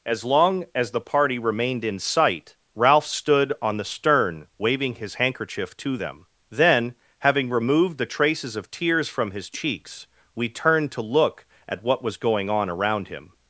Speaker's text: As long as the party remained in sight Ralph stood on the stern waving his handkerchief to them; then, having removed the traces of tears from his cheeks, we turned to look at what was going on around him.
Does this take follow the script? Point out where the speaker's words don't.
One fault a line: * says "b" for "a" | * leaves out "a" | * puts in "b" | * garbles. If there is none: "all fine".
all fine